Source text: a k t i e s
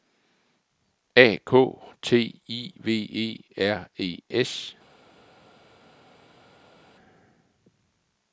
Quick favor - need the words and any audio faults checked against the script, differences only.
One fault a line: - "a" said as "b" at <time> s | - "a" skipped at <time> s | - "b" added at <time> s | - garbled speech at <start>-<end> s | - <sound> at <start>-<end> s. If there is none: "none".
- "v e r" added at 2.8 s